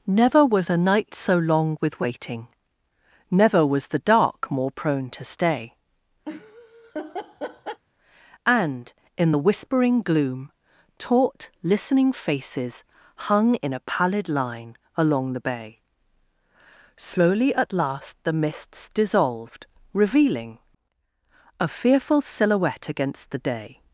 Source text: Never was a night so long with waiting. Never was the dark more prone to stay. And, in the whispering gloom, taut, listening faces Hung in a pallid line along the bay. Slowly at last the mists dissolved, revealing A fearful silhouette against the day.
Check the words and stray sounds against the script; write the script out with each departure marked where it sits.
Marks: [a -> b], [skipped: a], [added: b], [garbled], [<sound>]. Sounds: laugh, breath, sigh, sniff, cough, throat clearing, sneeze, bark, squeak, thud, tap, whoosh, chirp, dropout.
Never was a night so long with waiting. Never was the dark more prone to stay. [laugh] And, in the whispering gloom, taut, listening faces Hung in a pallid line along the bay. Slowly at last the mists dissolved, revealing A fearful silhouette against the day.